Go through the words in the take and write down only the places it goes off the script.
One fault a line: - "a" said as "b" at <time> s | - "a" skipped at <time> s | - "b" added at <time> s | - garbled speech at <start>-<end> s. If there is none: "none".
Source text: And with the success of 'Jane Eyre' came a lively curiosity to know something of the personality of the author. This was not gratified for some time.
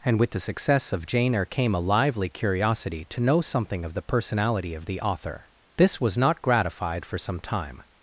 none